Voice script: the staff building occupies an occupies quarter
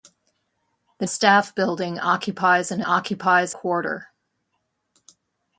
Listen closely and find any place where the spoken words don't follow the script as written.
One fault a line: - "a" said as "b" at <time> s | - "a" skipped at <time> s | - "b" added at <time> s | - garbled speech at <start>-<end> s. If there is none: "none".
none